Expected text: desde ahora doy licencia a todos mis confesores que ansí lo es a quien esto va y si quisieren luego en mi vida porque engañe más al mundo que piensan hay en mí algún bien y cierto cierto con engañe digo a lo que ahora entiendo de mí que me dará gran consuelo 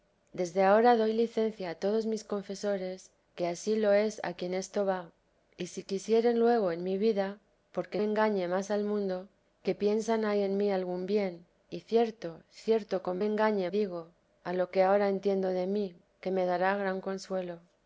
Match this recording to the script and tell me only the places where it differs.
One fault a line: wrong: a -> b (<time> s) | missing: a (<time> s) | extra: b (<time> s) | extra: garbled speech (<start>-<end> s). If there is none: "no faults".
no faults